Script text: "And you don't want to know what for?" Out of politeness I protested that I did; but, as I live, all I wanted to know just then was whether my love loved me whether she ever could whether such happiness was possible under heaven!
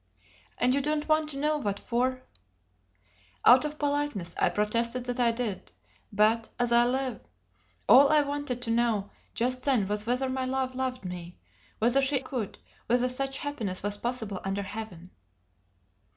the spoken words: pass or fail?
fail